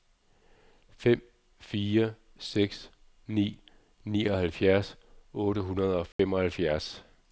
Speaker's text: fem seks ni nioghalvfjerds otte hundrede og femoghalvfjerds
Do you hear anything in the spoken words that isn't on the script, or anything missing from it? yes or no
yes